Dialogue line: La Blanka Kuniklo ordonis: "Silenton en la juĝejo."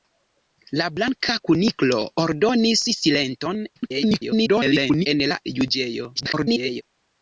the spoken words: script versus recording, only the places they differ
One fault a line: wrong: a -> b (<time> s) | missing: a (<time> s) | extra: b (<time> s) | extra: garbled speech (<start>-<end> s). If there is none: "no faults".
extra: garbled speech (3.8-5.1 s)
extra: garbled speech (6.2-6.8 s)